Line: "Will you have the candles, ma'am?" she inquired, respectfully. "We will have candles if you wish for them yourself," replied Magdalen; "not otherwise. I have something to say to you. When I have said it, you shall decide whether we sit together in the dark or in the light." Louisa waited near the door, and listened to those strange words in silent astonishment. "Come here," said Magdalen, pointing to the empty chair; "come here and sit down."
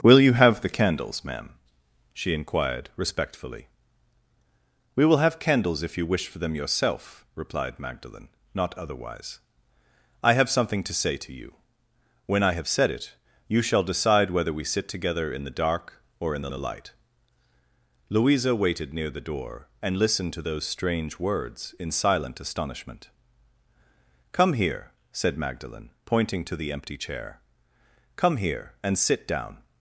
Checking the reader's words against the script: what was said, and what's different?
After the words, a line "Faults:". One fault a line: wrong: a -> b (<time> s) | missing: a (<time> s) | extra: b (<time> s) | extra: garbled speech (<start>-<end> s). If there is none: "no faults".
"Will you have the candles, ma'am?" she inquired, respectfully. "We will have candles if you wish for them yourself," replied Magdalen; "not otherwise. I have something to say to you. When I have said it, you shall decide whether we sit together in the dark or in the the light." Louisa waited near the door, and listened to those strange words in silent astonishment. "Come here," said Magdalen, pointing to the empty chair; "come here and sit down."
Faults:
extra: the (16.5 s)